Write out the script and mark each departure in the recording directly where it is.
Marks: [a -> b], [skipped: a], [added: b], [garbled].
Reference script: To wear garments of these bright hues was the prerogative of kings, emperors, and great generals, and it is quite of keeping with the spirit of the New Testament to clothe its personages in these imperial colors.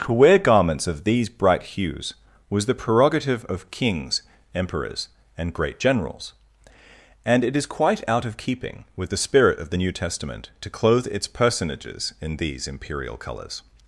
To wear garments of these bright hues was the prerogative of kings, emperors, and great generals, and it is quite [added: out] of keeping with the spirit of the New Testament to clothe its personages in these imperial colors.